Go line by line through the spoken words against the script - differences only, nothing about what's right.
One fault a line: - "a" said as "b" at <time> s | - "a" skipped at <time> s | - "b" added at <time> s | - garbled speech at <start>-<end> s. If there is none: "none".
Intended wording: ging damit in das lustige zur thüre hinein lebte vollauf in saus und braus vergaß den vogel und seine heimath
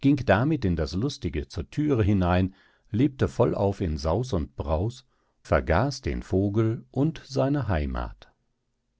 none